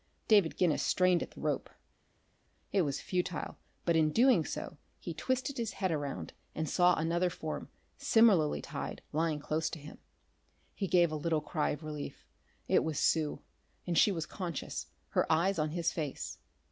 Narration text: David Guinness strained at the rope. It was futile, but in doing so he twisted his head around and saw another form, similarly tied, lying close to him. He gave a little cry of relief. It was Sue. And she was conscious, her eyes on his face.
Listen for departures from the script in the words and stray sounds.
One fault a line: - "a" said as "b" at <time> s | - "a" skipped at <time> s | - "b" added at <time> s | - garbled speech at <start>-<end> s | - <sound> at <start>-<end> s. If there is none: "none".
none